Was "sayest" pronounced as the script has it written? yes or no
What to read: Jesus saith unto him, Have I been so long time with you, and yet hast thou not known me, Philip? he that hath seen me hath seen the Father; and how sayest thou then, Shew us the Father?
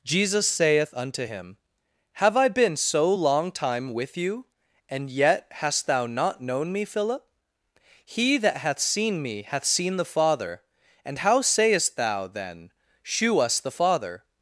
yes